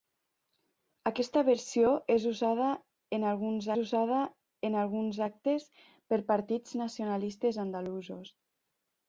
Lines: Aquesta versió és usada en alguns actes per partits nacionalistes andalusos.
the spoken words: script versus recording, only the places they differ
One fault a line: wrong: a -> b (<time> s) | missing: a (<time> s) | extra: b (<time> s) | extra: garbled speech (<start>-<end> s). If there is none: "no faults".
extra: usada en alguns (3.8 s)